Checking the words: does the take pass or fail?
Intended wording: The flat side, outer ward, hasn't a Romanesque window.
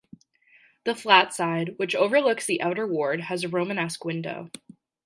fail